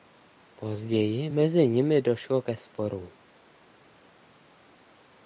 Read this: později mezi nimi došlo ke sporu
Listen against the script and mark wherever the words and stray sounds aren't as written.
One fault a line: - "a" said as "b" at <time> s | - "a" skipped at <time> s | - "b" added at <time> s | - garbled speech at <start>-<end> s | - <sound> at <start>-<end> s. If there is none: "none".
none